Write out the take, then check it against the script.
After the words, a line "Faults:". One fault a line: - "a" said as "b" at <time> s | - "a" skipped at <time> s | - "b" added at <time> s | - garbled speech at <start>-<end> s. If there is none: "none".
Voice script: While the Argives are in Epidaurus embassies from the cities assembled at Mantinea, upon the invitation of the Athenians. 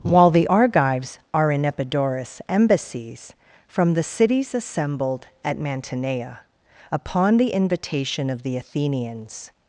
While the Argives are in Epidaurus embassies from the cities assembled at Mantinea, upon the invitation of the Athenians.
Faults:
none